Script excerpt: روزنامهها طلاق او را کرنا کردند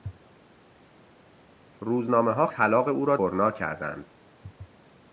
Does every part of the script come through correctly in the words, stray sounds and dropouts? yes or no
yes